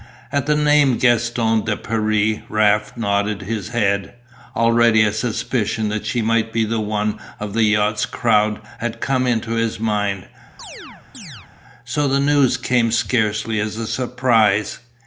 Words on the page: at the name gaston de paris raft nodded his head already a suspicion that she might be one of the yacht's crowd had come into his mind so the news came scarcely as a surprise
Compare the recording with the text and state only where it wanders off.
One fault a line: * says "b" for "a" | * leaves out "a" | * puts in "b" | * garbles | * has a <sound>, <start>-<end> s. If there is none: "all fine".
* has a chirp, 10.6-11.5 s